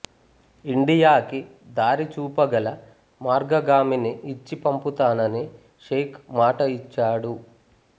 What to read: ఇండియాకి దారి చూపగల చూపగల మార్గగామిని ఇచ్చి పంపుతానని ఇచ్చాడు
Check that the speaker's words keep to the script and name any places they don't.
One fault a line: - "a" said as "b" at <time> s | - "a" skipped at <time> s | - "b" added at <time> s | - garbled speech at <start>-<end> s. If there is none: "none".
- "చూపగల" skipped at 2.7 s
- "షేక్ మాట" added at 5.9 s